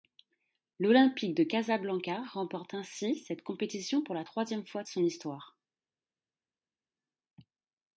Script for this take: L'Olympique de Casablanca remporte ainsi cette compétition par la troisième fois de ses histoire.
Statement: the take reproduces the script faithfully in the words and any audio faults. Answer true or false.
false